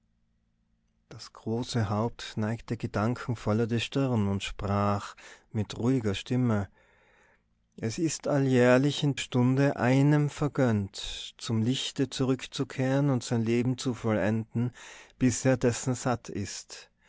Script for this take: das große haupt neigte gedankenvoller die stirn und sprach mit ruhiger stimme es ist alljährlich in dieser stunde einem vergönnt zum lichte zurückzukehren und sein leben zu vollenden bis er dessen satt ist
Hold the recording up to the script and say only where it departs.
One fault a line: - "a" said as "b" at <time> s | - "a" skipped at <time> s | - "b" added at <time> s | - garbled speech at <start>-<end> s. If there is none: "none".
- "dieser" skipped at 9.2 s